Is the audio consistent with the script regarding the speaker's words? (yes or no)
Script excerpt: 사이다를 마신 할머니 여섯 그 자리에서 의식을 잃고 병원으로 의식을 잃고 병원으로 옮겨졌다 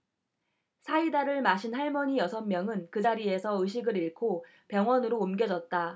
no